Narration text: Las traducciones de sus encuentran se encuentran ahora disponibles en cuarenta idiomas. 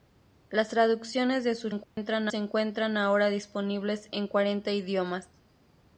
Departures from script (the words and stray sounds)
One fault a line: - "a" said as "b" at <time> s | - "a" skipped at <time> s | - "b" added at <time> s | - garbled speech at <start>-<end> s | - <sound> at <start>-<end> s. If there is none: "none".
- dropout at 1.8-2.0 s